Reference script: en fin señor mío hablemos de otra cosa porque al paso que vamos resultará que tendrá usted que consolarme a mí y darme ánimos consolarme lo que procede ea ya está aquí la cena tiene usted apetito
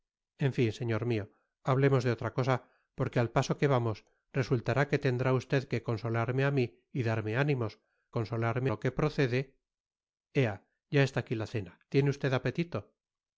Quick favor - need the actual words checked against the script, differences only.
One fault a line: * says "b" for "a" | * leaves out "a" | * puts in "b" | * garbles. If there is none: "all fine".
all fine